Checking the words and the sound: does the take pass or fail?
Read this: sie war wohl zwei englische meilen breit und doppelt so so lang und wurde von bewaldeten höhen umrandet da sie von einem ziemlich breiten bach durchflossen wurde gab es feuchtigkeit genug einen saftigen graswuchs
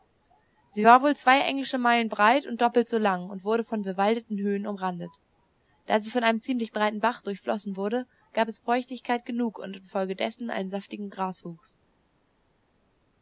fail